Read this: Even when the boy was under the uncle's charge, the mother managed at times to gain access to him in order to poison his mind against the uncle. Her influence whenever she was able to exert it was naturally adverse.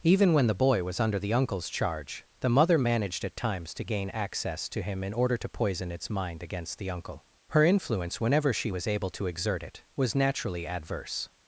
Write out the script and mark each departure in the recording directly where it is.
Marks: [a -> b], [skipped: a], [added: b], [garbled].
Even when the boy was under the uncle's charge, the mother managed at times to gain access to him in order to poison [his -> its] mind against the uncle. Her influence whenever she was able to exert it was naturally adverse.